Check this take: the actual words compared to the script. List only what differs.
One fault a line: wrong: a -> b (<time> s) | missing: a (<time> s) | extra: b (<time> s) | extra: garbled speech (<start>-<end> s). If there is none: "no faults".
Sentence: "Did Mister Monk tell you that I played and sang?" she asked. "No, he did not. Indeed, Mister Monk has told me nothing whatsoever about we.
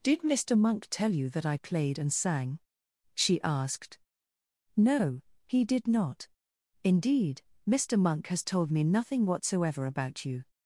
wrong: we -> you (10.2 s)